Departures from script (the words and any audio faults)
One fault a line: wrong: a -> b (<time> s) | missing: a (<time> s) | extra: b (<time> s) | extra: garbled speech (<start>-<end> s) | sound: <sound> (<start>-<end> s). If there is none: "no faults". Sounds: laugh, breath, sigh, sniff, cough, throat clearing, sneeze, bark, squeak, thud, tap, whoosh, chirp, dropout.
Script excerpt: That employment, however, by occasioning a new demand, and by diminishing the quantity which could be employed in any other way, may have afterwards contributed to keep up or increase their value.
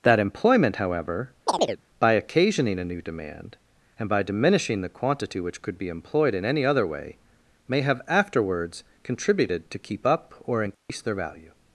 sound: chirp (1.5-1.8 s)
sound: dropout (10.7-10.9 s)